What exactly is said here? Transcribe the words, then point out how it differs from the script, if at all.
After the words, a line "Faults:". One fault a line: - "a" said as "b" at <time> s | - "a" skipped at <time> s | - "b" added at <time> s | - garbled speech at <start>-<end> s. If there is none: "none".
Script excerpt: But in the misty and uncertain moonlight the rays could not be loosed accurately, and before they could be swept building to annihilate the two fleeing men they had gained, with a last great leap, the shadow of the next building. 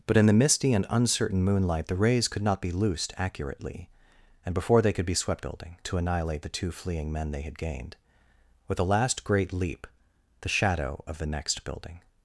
But in the misty and uncertain moonlight the rays could not be loosed accurately, and before they could be swept building to annihilate the two fleeing men they had gained, with a last great leap, the shadow of the next building.
Faults:
none